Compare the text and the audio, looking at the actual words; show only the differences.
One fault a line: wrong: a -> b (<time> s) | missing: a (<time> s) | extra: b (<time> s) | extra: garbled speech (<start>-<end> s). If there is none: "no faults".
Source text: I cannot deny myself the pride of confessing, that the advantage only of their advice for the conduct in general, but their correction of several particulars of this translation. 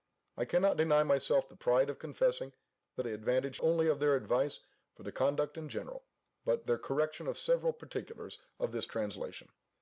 no faults